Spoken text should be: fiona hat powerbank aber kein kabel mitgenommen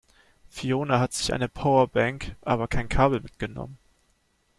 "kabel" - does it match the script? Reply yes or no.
yes